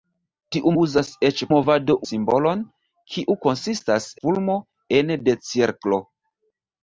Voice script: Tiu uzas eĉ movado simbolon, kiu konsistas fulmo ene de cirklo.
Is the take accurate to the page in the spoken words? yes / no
yes